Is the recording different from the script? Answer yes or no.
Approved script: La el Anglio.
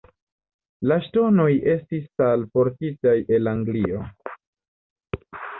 yes